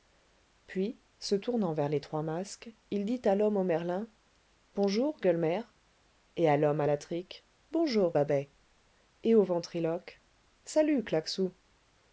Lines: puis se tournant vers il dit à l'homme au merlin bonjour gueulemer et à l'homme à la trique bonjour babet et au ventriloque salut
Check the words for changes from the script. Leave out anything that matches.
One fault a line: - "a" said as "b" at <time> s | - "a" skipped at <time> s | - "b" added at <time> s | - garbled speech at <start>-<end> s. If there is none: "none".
- "les trois masques" added at 1.9 s